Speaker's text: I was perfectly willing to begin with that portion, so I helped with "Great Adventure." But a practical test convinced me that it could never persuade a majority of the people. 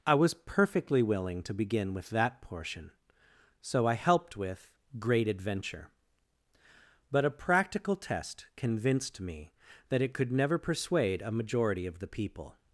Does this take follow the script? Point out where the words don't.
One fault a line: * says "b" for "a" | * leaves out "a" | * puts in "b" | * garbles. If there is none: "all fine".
all fine